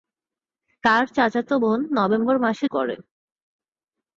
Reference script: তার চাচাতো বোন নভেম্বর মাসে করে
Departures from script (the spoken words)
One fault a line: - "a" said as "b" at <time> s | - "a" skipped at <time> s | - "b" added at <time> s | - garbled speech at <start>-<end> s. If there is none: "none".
none